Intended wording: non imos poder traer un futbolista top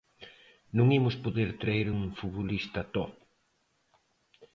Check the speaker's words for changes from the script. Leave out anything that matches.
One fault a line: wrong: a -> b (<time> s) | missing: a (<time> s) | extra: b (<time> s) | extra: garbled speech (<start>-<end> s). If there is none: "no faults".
no faults